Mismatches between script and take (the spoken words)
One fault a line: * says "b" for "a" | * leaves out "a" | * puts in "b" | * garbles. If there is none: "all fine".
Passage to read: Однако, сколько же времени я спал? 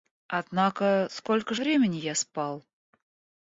* leaves out "же"